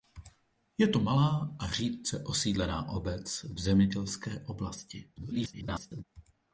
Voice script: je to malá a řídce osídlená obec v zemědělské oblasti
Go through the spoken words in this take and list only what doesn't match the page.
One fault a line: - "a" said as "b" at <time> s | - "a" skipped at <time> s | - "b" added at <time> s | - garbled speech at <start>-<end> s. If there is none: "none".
- garbled speech at 5.2-6.0 s